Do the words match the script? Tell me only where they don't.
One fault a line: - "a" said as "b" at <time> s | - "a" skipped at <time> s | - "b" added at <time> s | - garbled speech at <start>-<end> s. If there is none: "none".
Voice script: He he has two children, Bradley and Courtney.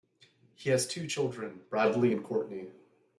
- "he" skipped at 0.7 s